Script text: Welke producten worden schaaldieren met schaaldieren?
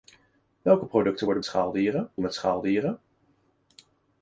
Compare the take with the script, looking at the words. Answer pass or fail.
pass